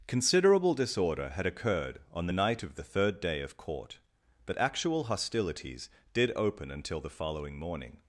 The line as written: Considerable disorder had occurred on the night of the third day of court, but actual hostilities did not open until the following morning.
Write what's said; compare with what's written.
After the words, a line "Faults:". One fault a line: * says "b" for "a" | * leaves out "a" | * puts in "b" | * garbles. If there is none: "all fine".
Considerable disorder had occurred on the night of the third day of court, but actual hostilities did open until the following morning.
Faults:
* leaves out "not"